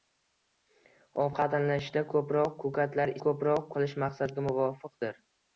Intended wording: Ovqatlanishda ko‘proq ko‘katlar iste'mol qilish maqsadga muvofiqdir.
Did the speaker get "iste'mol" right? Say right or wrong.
wrong